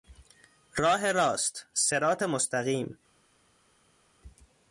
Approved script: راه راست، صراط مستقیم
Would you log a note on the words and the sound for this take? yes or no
no